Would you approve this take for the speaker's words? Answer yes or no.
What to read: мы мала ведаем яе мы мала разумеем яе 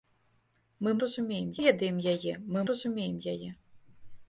no